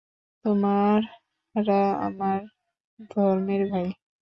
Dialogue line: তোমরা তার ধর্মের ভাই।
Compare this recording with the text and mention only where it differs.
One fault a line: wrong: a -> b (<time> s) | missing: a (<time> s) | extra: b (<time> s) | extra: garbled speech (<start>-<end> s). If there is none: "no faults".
wrong: তার -> আমার (2.1 s)